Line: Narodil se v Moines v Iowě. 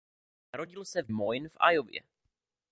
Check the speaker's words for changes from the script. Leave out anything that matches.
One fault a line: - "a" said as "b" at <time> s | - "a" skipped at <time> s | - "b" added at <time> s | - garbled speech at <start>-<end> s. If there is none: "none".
none